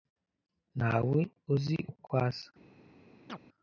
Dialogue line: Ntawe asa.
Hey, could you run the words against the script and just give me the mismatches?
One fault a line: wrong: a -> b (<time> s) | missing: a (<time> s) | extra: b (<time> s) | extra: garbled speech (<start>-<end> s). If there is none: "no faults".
extra: uzi uko (1.5 s)